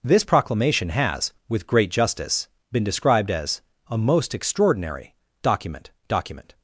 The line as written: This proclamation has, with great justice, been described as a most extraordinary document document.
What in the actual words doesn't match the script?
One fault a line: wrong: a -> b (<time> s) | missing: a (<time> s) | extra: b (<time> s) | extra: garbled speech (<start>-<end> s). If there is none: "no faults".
no faults